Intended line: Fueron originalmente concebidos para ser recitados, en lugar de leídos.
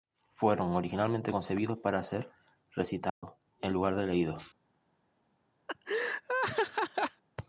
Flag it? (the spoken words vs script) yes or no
no